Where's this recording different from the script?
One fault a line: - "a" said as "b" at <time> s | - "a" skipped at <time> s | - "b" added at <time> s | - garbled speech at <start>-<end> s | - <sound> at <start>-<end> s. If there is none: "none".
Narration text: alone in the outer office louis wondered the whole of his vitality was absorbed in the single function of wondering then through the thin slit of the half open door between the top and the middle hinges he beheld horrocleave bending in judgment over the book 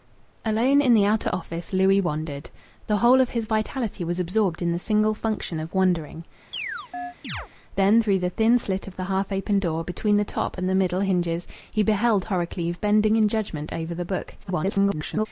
- chirp at 6.5-7.5 s
- garbled speech at 14.4-15.3 s